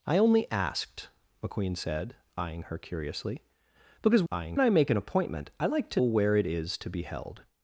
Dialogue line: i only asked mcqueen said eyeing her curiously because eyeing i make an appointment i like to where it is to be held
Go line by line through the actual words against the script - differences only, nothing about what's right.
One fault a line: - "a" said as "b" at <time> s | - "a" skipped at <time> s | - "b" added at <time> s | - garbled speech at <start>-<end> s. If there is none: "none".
none